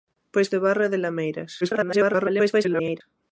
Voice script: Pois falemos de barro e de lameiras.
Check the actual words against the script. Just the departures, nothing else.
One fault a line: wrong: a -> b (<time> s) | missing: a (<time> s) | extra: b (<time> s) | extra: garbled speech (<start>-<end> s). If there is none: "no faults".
missing: falemos (0.5 s)
extra: garbled speech (1.6-3.0 s)